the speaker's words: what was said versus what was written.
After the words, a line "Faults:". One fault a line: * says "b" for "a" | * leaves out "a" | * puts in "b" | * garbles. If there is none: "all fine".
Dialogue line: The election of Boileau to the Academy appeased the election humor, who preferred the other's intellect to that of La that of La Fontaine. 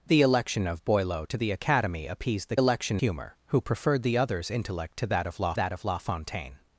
The election of Boileau to the Academy appeased the election humor, who preferred the other's intellect to that of La that of La Fontaine.
Faults:
all fine